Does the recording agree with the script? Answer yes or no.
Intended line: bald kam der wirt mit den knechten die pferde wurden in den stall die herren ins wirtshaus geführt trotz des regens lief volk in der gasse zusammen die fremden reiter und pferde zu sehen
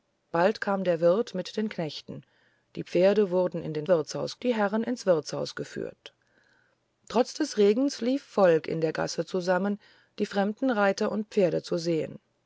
no